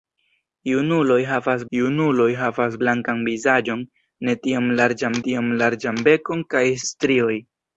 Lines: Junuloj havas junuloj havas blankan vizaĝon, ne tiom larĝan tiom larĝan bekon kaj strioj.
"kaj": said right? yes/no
yes